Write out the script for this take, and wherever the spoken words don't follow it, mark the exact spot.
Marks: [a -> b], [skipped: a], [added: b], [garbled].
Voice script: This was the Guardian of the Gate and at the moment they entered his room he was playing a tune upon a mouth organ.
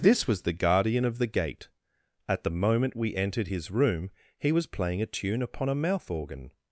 This was the Guardian of the Gate [skipped: and] at the moment [they -> we] entered his room he was playing a tune upon a mouth organ.